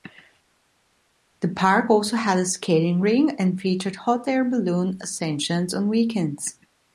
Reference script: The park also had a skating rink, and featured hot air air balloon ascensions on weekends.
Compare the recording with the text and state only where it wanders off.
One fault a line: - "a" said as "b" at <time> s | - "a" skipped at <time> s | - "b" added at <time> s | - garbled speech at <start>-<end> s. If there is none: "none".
- "air" skipped at 4.4 s